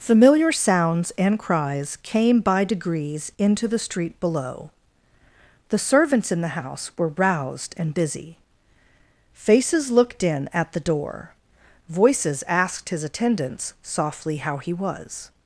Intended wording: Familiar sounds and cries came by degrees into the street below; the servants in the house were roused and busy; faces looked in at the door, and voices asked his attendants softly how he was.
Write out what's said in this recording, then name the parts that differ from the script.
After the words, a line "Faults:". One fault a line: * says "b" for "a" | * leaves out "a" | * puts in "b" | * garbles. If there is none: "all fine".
Familiar sounds and cries came by degrees into the street below; the servants in the house were roused and busy; faces looked in at the door, voices asked his attendants softly how he was.
Faults:
* leaves out "and"